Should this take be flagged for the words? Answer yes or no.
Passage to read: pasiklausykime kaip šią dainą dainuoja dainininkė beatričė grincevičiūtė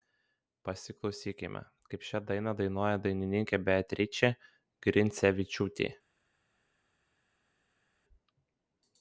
no